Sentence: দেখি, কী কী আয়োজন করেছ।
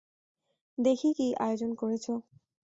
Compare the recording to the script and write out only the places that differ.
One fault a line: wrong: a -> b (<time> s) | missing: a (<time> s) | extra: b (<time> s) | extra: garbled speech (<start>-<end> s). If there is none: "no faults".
missing: কী (1.3 s)